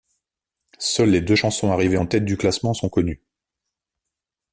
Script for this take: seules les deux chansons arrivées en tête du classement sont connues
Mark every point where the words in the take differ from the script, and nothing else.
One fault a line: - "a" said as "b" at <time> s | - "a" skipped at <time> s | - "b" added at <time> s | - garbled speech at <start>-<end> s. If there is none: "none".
none